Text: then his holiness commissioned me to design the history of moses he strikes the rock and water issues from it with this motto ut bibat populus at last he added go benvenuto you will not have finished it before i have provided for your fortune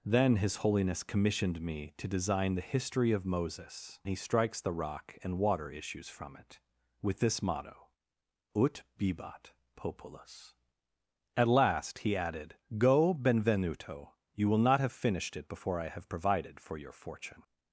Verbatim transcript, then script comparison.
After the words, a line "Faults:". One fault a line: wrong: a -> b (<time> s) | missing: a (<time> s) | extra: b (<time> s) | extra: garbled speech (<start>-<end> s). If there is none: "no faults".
then his holiness commissioned me to design the history of moses he strikes the rock and water issues from it with this motto ut bibat populus at last he added go benvenuto you will not have finished it before i have provided for your fortune
Faults:
no faults